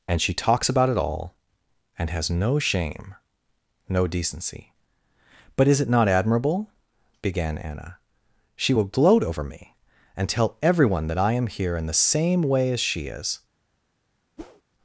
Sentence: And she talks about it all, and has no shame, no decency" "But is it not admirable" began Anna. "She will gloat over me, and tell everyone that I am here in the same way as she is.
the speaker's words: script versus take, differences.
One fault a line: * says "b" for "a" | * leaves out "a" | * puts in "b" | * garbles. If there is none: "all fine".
all fine